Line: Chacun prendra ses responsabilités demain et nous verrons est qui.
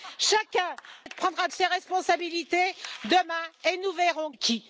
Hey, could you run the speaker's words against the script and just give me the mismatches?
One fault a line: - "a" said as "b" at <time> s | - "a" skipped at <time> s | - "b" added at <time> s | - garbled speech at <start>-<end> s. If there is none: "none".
none